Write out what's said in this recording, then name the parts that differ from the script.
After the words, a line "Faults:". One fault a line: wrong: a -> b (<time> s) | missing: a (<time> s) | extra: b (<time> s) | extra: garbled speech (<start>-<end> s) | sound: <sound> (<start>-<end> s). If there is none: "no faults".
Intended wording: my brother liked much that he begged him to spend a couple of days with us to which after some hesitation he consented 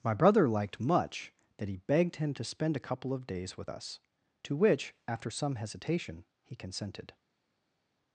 my brother liked much that he begged him to spend a couple of days with us to which after some hesitation he consented
Faults:
no faults